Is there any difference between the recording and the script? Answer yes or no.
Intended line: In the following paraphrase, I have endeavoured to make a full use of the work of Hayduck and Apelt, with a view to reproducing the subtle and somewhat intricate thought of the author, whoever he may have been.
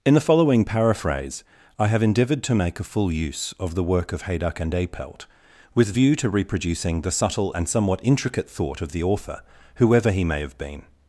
yes